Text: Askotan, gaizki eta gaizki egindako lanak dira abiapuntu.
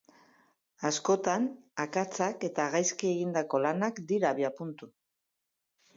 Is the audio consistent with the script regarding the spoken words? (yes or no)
no